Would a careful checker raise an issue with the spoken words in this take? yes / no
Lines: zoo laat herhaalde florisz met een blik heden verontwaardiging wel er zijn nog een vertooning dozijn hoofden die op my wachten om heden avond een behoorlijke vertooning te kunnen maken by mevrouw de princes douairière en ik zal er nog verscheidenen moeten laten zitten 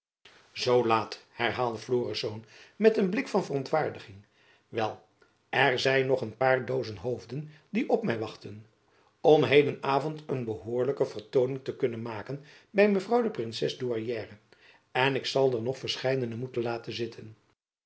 yes